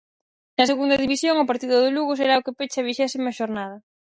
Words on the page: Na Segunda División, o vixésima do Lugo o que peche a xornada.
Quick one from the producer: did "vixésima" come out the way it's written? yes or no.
no